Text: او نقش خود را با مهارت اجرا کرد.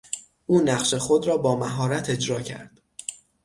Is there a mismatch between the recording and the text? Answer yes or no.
no